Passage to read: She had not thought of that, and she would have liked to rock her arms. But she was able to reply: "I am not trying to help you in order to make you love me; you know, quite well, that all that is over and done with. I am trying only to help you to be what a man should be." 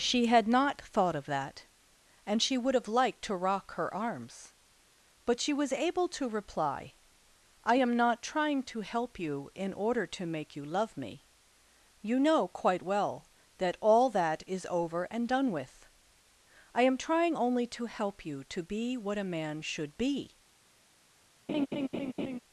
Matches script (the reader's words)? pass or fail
pass